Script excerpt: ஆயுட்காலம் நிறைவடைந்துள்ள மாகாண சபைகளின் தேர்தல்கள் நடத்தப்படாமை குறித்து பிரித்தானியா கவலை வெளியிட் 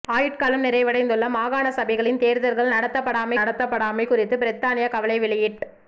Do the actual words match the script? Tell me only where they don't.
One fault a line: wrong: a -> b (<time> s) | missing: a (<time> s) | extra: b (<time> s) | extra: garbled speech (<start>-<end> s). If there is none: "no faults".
extra: நடத்தப்படாமை (3.4 s)